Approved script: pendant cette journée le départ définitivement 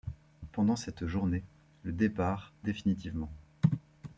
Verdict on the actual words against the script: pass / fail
pass